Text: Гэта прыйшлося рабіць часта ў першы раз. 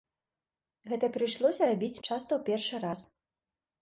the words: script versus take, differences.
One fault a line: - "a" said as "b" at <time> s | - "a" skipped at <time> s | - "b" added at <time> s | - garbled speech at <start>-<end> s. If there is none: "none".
none